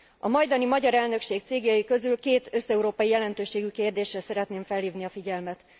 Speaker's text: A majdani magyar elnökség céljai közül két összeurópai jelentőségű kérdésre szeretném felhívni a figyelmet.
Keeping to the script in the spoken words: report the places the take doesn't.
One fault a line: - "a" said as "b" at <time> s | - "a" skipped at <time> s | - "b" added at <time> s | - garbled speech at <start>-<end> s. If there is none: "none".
none